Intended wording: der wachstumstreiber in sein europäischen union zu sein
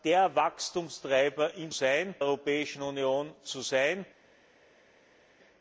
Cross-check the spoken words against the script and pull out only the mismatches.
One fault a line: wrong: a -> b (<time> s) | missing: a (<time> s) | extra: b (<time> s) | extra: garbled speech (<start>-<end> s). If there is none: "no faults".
no faults